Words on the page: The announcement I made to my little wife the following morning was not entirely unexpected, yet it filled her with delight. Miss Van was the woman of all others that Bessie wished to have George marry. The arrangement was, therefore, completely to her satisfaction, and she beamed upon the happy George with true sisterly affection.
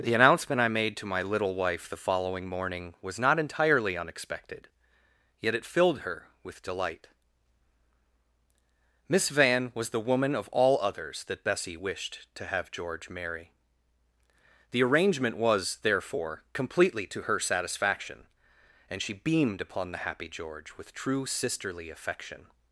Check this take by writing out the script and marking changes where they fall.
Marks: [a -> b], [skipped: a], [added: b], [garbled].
The announcement I made to my little wife the following morning was not entirely unexpected, yet it filled her with delight. Miss Van was the woman of all others that Bessie wished to have George marry. The arrangement was, therefore, completely to her satisfaction, and she beamed upon the happy George with true sisterly affection.